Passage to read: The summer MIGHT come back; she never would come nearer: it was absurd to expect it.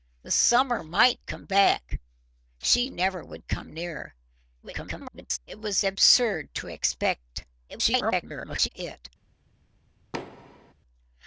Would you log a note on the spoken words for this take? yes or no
yes